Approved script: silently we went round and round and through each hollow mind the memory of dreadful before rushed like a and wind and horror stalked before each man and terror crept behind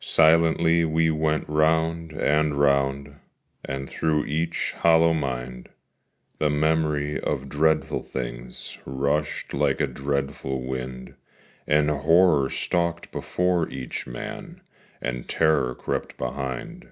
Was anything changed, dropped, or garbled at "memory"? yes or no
no